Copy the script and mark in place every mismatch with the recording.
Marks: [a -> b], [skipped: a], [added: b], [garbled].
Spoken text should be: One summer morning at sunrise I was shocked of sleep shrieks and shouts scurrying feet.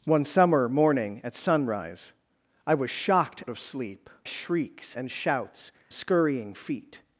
One summer morning at sunrise I was shocked of sleep shrieks and shouts scurrying feet.